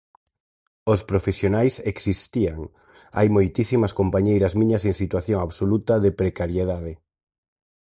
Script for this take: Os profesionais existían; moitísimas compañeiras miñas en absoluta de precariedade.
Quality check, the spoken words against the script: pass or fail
fail